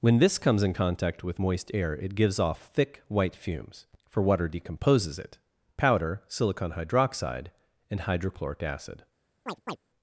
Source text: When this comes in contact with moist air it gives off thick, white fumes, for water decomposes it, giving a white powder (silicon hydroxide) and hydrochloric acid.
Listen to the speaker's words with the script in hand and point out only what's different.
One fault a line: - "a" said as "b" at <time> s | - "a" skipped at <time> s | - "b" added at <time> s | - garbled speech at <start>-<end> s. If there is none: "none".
- "giving a white" skipped at 5.4 s